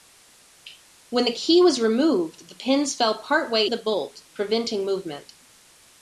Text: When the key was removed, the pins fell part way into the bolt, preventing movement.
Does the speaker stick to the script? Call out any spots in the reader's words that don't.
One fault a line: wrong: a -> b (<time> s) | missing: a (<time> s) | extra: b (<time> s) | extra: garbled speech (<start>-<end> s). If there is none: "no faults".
missing: into (3.7 s)